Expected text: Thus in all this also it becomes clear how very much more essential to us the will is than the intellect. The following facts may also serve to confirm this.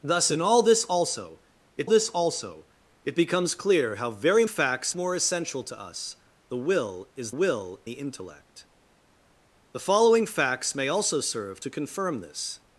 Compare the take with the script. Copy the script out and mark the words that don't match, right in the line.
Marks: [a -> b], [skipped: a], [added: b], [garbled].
Thus in all this also it [added: this also it] becomes clear how very [much -> facts] more essential to us the will is [than -> will] the intellect. The following facts may also serve to confirm this.